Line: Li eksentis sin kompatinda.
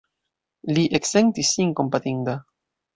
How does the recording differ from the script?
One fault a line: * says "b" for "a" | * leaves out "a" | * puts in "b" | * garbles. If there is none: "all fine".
all fine